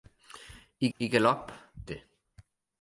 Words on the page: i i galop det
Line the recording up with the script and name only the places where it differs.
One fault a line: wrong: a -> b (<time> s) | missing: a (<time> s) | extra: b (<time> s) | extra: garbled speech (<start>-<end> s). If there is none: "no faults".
no faults